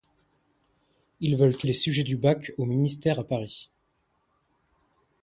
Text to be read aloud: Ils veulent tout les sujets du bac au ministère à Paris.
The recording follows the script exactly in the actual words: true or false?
true